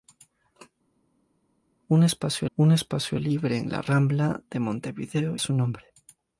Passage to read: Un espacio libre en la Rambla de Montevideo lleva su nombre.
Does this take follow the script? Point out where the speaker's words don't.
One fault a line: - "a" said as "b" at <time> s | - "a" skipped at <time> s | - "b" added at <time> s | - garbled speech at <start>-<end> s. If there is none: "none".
- "un espacio" added at 2.6 s
- "lleva" skipped at 5.4 s